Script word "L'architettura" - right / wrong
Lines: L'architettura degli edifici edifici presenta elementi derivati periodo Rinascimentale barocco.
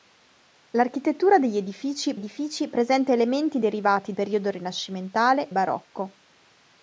right